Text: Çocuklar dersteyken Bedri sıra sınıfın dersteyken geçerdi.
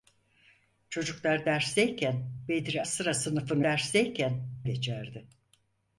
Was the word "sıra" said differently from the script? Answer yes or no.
no